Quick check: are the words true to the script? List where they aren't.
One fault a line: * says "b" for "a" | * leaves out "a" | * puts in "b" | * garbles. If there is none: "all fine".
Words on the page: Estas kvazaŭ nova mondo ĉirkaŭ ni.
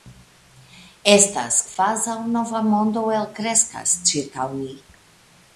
* puts in "elkreskas"